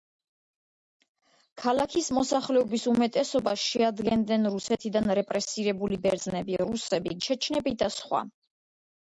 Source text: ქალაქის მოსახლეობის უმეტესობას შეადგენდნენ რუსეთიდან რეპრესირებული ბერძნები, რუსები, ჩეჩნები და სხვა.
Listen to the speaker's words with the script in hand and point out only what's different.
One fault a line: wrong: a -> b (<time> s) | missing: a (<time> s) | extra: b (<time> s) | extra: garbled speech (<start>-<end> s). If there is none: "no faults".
no faults